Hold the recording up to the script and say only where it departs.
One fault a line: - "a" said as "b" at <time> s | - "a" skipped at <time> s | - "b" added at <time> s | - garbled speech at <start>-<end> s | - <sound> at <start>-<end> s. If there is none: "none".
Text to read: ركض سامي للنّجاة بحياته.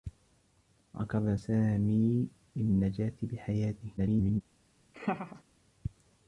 - garbled speech at 4.0-4.4 s
- laugh at 4.9-5.4 s